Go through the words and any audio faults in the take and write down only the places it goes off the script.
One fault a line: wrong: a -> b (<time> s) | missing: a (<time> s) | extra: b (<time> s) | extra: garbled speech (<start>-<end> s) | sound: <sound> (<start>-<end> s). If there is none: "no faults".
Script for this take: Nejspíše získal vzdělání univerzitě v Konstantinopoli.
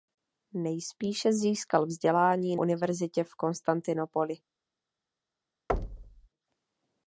sound: thud (5.7-6.3 s)